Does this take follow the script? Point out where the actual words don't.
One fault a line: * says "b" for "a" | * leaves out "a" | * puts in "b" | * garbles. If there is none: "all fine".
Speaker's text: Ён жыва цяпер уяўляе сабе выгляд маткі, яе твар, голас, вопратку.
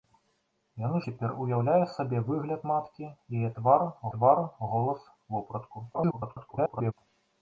* leaves out "жыва"
* puts in "твар"
* garbles